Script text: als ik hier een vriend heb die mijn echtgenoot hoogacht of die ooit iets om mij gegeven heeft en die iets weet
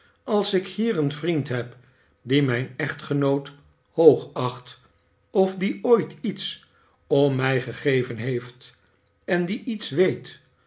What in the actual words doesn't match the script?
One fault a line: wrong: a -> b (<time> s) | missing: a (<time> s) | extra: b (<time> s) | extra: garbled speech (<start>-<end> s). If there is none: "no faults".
no faults